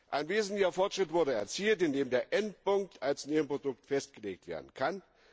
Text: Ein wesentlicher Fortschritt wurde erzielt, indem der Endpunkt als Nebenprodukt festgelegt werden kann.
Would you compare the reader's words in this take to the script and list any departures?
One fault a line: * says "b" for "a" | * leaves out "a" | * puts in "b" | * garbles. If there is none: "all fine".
all fine